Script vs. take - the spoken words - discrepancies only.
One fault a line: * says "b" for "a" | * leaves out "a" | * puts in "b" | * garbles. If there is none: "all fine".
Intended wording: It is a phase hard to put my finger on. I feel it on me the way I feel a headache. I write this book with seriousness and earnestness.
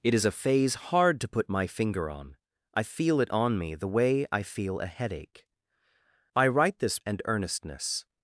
* leaves out "book with seriousness"